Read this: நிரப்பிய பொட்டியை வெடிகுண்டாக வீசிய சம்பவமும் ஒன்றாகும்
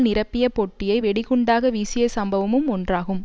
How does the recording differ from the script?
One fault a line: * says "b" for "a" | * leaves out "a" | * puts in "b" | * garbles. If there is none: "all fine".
all fine